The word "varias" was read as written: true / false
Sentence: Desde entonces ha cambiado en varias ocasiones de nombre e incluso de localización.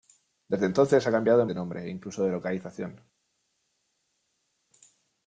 false